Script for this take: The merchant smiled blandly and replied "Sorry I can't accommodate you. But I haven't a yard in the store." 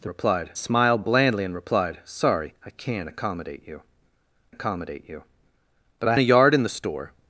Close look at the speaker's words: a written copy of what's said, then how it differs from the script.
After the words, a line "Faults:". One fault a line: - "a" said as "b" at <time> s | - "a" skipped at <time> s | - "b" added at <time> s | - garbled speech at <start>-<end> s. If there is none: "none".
The replied smiled blandly and replied "Sorry I can't accommodate you accommodate you. But I a yard in the store."
Faults:
- "merchant" said as "replied" at 0.1 s
- "accommodate you" added at 4.5 s
- "haven't" skipped at 6.2 s